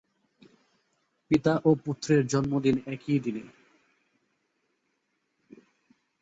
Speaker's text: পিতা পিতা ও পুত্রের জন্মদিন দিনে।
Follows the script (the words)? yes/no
no